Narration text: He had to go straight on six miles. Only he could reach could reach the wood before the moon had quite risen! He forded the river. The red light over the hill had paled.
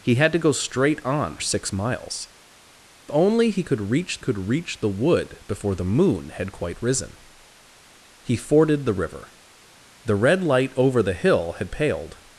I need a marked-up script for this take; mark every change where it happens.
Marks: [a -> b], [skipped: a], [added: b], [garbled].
He had to go straight on six miles. Only he could reach could reach the wood before the moon had quite risen! He forded the river. The red light over the hill had paled.